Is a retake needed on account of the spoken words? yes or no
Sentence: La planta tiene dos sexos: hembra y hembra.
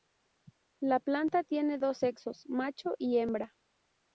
yes